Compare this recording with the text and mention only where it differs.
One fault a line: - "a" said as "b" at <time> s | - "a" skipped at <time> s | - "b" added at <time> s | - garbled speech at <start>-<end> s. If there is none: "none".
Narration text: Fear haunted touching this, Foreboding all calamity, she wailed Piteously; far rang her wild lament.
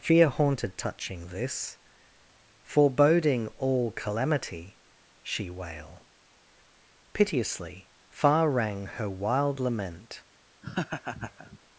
- "wailed" said as "wail" at 5.5 s